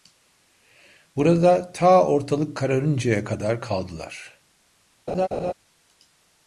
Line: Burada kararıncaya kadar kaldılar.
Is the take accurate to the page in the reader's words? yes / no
no